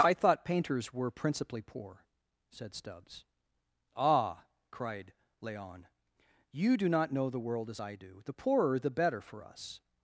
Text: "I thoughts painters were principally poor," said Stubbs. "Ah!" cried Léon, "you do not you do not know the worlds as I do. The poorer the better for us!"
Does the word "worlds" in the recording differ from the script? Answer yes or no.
yes